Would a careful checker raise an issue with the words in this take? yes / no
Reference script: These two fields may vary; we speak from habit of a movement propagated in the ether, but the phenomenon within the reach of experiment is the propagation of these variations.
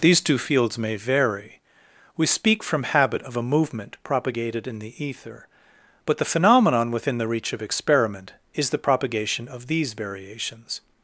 no